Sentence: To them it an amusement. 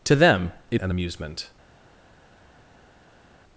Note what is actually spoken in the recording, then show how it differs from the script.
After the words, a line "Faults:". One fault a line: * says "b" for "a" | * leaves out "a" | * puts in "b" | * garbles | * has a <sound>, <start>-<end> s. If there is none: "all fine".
To them it an amusement.
Faults:
all fine